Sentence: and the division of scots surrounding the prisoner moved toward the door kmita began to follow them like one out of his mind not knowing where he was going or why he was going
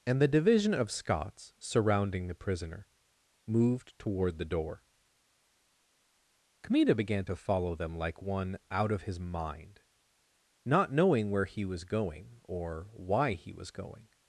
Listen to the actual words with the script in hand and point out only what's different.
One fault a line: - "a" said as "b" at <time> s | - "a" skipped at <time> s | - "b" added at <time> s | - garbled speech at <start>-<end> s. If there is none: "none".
none